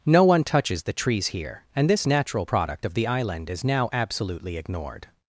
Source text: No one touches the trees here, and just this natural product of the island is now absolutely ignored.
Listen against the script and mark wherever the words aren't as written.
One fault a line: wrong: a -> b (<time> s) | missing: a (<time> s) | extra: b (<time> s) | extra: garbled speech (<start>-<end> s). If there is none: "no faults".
missing: just (1.9 s)